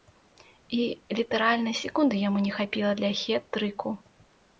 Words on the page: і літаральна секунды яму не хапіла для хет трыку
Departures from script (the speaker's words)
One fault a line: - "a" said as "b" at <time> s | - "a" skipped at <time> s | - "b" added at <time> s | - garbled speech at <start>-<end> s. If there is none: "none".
none